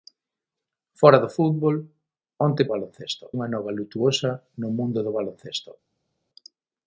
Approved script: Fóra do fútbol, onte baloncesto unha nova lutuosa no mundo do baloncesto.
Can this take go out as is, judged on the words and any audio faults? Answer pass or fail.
pass